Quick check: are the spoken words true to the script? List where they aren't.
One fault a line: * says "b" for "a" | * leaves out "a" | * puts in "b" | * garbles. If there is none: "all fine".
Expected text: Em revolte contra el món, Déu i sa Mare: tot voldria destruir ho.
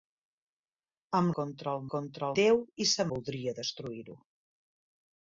* leaves out "revolte"
* says "contra" for "món"
* leaves out "Mare tot"